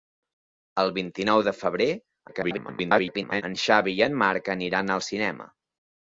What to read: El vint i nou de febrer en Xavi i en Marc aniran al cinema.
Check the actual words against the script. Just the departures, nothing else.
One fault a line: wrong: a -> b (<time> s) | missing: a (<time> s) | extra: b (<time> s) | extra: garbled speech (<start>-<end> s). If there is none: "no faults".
extra: garbled speech (2.3-3.4 s)